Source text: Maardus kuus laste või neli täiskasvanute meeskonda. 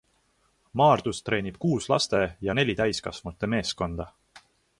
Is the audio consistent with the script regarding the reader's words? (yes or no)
no